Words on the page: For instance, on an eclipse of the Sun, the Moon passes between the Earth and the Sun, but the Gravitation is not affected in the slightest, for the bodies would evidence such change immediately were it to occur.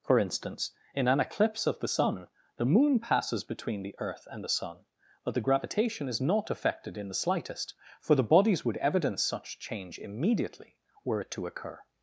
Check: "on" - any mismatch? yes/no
yes